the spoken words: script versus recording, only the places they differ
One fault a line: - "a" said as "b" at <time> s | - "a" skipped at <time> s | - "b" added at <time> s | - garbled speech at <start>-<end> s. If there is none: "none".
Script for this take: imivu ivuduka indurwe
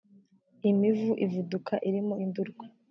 - "irimo" added at 1.9 s